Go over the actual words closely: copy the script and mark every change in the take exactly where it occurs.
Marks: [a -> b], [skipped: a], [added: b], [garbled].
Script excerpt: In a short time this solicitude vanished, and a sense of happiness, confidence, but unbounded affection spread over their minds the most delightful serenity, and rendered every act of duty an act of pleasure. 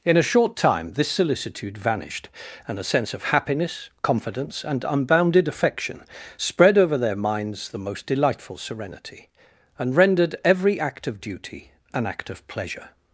In a short time this solicitude vanished, and a sense of happiness, confidence, [but -> and] unbounded affection spread over their minds the most delightful serenity, and rendered every act of duty an act of pleasure.